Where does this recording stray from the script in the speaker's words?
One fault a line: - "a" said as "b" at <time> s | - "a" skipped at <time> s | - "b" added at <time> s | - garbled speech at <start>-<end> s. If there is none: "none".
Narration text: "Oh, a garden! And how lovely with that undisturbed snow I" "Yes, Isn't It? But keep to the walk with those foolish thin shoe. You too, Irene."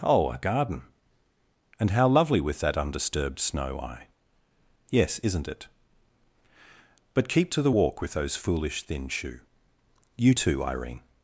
none